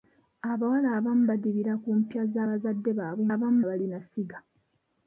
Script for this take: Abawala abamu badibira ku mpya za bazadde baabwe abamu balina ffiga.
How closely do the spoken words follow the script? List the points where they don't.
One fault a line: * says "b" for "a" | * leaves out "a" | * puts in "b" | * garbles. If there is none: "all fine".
all fine